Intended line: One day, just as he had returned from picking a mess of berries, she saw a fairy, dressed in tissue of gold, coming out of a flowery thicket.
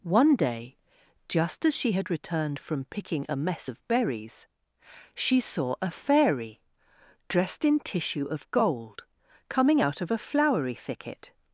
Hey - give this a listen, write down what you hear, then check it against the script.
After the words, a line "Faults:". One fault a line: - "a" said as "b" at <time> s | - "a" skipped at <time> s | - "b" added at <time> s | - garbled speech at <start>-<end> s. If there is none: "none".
One day, just as she had returned from picking a mess of berries, she saw a fairy, dressed in tissue of gold, coming out of a flowery thicket.
Faults:
- "he" said as "she" at 1.8 s